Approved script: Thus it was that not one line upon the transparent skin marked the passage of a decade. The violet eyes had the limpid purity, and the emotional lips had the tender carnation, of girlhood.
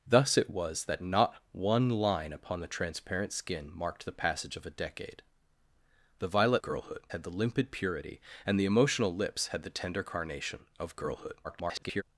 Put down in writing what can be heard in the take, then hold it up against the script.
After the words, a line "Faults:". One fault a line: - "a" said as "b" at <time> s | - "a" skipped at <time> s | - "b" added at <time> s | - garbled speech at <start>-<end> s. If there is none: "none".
Thus it was that not one line upon the transparent skin marked the passage of a decade. The violet girlhood had the limpid purity, and the emotional lips had the tender carnation, of girlhood. [garbled]
Faults:
- "eyes" said as "girlhood" at 6.6 s
- garbled speech at 11.4-12.0 s